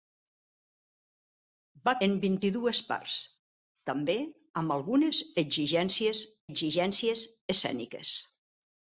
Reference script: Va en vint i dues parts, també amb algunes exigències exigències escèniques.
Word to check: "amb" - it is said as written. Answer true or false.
true